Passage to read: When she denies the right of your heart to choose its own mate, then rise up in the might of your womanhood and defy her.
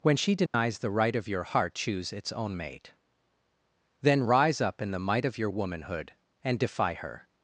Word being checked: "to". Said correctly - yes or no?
no